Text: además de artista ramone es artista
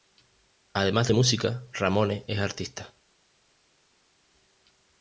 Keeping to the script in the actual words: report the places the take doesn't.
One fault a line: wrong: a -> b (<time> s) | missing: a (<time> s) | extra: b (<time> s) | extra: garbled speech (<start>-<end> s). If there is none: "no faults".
wrong: artista -> música (1.1 s)